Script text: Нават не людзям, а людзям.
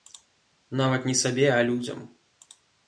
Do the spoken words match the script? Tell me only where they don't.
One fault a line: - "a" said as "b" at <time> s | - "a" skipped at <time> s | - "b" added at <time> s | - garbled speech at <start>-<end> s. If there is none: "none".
- "людзям" said as "сабе" at 1.1 s